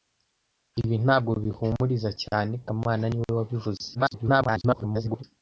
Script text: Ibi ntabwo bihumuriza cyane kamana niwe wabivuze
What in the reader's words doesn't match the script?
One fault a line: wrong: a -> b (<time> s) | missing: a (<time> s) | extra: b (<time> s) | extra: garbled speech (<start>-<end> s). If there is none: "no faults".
extra: garbled speech (3.9-5.2 s)